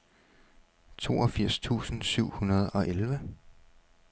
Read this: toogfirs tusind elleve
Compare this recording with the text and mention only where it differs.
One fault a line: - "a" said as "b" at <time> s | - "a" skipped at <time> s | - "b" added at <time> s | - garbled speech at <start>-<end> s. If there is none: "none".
- "syv hundrede og" added at 2.0 s